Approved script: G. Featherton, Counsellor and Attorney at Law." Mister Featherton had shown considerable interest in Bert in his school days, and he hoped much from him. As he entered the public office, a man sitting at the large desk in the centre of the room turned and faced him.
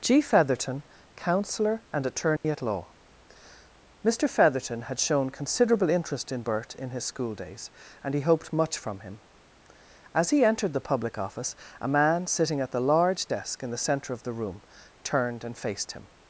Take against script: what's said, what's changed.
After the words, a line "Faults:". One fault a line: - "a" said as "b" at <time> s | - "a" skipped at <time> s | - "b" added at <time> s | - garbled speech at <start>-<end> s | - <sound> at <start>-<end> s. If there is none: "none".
G. Featherton, Counsellor and Attorney at Law." Mister Featherton had shown considerable interest in Bert in his school days, and he hoped much from him. As he entered the public office, a man sitting at the large desk in the centre of the room turned and faced him.
Faults:
- dropout at 2.4-2.4 s